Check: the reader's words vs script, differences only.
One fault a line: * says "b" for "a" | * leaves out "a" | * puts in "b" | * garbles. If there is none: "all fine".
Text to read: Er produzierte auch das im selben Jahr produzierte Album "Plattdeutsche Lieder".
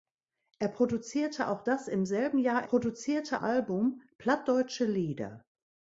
all fine